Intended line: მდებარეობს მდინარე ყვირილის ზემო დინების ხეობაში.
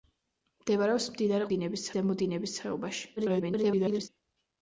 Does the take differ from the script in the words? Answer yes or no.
yes